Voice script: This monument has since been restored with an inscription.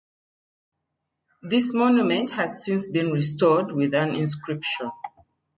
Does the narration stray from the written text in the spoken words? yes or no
no